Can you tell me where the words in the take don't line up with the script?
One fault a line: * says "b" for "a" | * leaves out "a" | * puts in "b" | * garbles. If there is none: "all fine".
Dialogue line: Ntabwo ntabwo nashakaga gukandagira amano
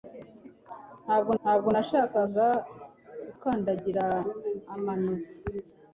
all fine